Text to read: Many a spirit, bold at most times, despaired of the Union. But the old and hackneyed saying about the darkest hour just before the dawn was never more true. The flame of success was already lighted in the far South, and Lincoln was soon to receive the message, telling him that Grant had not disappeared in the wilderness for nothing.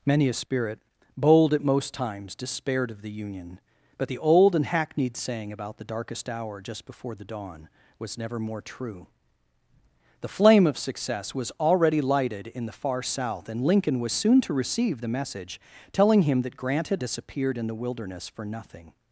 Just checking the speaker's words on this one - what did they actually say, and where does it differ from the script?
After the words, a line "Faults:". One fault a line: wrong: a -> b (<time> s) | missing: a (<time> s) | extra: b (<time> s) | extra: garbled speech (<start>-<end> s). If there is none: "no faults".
Many a spirit, bold at most times, despaired of the Union. But the old and hackneyed saying about the darkest hour just before the dawn was never more true. The flame of success was already lighted in the far South, and Lincoln was soon to receive the message, telling him that Grant had disappeared in the wilderness for nothing.
Faults:
missing: not (17.0 s)